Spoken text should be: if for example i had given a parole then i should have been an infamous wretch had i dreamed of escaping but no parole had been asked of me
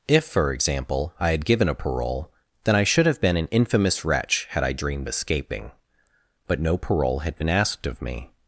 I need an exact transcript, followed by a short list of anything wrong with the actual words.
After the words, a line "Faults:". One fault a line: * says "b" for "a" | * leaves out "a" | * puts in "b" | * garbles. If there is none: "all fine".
if for example i had given a parole then i should have been an infamous wretch had i dreamed escaping but no parole had been asked of me
Faults:
* leaves out "of"